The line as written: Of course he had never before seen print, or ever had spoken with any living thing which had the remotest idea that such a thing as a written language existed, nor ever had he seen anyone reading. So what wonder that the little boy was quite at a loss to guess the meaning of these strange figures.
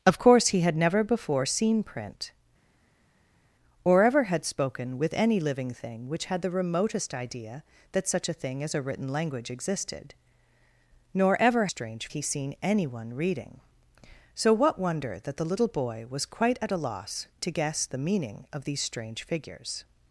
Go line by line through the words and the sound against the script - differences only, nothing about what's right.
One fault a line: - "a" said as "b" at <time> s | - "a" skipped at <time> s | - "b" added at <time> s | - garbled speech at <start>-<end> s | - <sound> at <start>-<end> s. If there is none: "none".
- "had" said as "strange" at 11.7 s